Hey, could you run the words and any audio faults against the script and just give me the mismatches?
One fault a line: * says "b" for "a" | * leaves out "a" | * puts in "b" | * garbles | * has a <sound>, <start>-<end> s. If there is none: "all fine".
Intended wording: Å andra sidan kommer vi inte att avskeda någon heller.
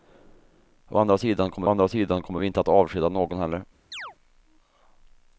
* puts in "andra sidan kommer"
* has a chirp, 3.9-4.2 s